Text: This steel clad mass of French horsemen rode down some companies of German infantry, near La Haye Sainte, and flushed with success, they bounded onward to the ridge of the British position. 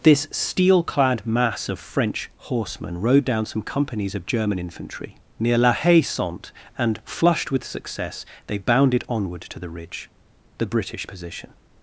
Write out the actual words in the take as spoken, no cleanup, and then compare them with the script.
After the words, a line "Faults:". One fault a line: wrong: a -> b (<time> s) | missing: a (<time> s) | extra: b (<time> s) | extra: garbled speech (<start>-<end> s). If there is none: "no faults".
This steel clad mass of French horsemen rode down some companies of German infantry, near La Haye Sainte, and flushed with success, they bounded onward to the ridge the British position.
Faults:
missing: of (10.1 s)